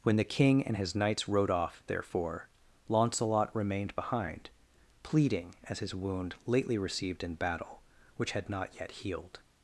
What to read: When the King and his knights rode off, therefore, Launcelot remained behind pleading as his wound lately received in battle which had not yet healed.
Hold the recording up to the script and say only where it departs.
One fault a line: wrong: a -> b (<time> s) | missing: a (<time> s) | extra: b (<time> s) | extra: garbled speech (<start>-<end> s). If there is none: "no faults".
no faults